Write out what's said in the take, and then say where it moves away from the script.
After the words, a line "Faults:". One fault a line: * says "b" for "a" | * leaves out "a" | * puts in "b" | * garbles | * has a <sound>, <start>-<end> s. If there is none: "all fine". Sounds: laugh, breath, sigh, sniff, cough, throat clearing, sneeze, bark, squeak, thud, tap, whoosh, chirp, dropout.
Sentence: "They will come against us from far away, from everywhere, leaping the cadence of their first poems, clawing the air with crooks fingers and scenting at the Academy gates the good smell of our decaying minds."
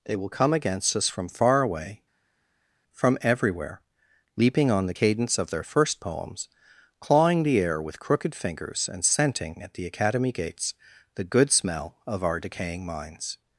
"They will come against us from far away, from everywhere, leaping on the cadence of their first poems, clawing the air with crooked fingers and scenting at the Academy gates the good smell of our decaying minds."
Faults:
* puts in "on"
* says "crooked" for "crooks"